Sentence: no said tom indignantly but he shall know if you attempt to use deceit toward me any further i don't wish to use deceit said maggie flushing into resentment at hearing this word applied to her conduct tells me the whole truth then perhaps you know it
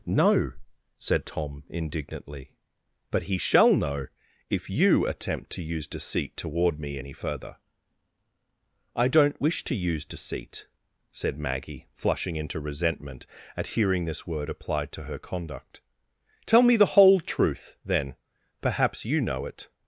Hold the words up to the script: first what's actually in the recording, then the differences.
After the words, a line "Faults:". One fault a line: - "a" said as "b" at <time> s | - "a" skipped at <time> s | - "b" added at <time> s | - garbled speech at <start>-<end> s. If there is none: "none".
no said tom indignantly but he shall know if you attempt to use deceit toward me any further i don't wish to use deceit said maggie flushing into resentment at hearing this word applied to her conduct tell me the whole truth then perhaps you know it
Faults:
- "tells" said as "tell" at 16.4 s